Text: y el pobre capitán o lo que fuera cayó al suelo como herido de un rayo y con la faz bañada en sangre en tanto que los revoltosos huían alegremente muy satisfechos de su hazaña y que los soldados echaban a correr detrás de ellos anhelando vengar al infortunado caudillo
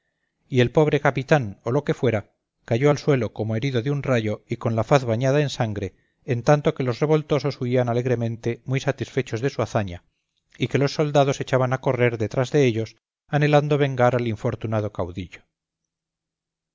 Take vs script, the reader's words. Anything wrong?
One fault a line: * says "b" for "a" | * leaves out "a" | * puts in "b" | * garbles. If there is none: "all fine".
all fine